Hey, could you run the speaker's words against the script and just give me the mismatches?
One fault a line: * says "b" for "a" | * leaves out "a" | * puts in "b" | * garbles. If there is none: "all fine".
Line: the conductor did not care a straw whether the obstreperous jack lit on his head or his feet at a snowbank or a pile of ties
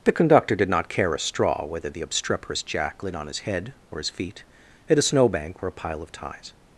all fine